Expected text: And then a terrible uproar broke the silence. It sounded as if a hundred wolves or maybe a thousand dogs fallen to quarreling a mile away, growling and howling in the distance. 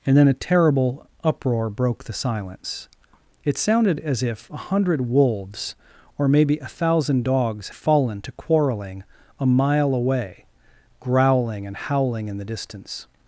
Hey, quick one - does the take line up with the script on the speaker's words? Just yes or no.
yes